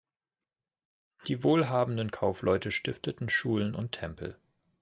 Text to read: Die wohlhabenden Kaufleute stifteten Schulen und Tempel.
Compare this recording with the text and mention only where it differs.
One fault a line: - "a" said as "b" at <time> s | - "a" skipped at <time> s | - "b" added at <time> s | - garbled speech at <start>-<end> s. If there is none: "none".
none